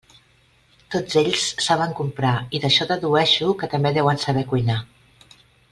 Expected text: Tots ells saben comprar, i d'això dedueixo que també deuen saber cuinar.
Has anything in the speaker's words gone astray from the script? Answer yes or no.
no